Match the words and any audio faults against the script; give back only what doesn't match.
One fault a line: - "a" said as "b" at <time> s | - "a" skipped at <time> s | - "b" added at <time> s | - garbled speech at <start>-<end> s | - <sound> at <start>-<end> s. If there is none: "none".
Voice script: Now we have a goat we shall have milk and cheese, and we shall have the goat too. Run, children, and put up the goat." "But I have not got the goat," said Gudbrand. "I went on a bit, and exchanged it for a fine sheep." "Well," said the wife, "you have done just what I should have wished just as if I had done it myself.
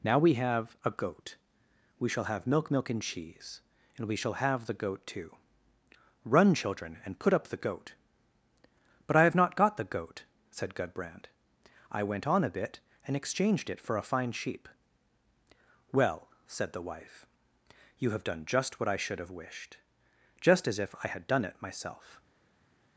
- "milk" added at 2.7 s